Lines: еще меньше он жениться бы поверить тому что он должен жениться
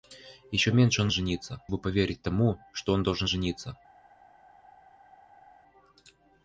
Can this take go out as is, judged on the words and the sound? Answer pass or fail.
pass